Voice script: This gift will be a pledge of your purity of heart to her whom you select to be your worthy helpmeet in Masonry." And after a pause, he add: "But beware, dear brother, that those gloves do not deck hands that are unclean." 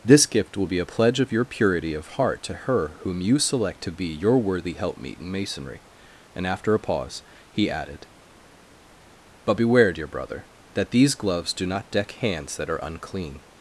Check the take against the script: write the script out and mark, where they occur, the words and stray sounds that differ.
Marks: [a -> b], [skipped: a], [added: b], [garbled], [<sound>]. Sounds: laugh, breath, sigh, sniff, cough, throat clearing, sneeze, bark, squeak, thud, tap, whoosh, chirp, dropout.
This gift will be a pledge of your purity of heart to her whom you select to be your worthy helpmeet in Masonry." And after a pause, he [add: -> added] "But beware, dear brother, that [those -> these] gloves do not deck hands that are unclean."